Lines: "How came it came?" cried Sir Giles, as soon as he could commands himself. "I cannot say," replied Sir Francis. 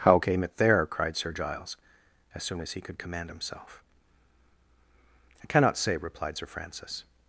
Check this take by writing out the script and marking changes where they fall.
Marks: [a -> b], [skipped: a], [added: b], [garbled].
"How came it [came?" -> there] cried Sir Giles, as soon as he could [commands -> command] himself. "I cannot say," replied Sir Francis.